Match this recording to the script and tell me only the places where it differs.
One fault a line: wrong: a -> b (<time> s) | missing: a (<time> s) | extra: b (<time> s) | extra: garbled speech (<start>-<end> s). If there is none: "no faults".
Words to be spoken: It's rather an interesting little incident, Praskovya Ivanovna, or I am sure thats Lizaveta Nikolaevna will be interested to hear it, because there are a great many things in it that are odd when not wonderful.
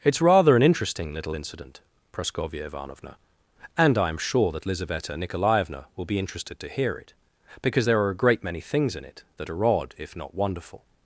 wrong: or -> and (3.8 s)
wrong: thats -> that (4.5 s)
wrong: when -> if (10.0 s)